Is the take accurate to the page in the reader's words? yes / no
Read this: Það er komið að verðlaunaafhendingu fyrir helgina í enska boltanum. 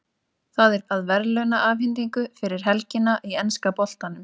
no